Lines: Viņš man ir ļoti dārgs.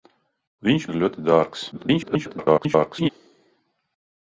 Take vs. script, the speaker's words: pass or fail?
fail